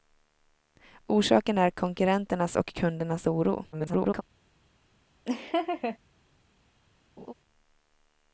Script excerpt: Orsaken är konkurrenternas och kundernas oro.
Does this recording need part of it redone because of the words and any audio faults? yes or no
yes